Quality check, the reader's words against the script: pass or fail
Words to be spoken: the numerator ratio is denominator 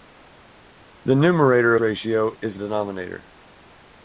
pass